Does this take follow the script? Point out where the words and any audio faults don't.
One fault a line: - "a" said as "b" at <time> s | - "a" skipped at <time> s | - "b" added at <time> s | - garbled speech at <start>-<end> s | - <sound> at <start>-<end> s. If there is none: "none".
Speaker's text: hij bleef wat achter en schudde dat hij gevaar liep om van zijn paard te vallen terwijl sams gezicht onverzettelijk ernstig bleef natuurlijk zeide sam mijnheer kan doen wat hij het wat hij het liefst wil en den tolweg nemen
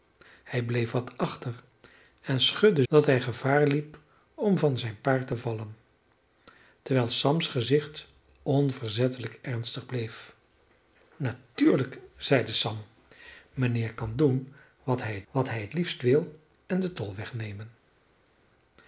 none